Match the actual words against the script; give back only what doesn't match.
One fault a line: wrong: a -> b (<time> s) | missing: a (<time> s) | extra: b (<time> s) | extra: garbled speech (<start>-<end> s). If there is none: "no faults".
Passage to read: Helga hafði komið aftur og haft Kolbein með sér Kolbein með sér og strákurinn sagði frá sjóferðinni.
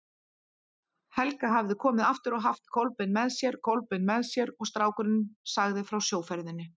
no faults